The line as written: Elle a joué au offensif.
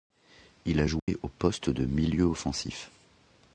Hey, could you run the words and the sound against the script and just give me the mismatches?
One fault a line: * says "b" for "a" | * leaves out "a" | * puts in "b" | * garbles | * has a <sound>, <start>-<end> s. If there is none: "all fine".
* says "Il" for "Elle"
* has a dropout, 1.0-1.1 s
* puts in "poste de milieu"